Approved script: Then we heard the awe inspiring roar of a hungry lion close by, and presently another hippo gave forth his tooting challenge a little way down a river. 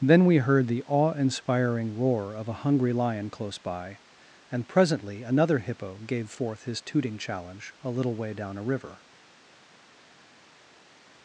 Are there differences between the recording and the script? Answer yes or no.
no